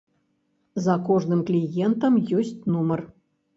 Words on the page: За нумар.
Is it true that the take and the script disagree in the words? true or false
true